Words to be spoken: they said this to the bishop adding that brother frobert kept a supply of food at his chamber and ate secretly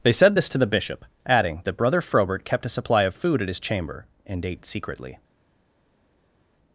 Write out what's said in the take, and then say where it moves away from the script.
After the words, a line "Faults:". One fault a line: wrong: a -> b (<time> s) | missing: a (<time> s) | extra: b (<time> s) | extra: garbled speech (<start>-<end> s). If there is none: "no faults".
they said this to the bishop adding that brother frobert kept a supply of food at his chamber and ate secretly
Faults:
no faults